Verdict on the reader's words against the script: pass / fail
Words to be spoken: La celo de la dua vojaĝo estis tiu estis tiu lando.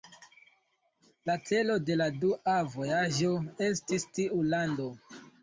fail